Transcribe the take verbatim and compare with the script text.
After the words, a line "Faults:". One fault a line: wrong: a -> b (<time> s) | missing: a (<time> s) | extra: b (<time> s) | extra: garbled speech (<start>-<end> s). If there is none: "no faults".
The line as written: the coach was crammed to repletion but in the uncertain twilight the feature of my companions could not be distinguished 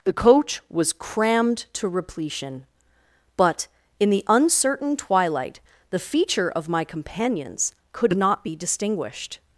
the coach was crammed to repletion but in the uncertain twilight the feature of my companions could not be distinguished
Faults:
no faults